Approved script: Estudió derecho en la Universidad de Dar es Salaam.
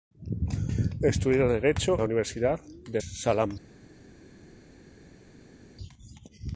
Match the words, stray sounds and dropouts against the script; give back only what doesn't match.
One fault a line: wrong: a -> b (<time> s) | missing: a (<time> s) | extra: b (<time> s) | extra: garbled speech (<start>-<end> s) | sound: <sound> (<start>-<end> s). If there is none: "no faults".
missing: en (2.0 s)
missing: Dar es (3.0 s)